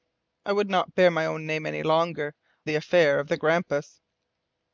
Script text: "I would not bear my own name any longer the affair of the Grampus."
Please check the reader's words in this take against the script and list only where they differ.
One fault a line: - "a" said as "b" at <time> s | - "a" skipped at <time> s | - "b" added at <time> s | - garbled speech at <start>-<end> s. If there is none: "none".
none